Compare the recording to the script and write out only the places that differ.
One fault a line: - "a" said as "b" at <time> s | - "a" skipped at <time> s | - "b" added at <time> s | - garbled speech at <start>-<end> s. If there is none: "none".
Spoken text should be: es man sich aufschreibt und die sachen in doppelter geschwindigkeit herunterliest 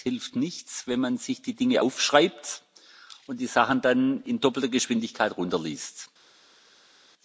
- "hilft nichts wenn" added at 0.1 s
- "die dinge" added at 1.4 s
- "dann" added at 3.8 s